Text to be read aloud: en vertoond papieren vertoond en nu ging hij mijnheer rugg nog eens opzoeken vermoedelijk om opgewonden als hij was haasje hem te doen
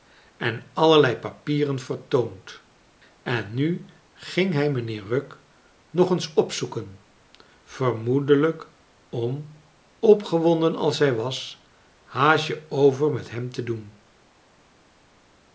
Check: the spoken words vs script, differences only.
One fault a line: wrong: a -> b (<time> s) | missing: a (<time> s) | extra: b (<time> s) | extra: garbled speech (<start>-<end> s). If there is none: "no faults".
wrong: vertoond -> allerlei (0.7 s)
extra: over met (12.7 s)